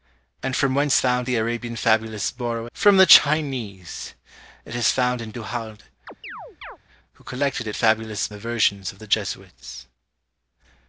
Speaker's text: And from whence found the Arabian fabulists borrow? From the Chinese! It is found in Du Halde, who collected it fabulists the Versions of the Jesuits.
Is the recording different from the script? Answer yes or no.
no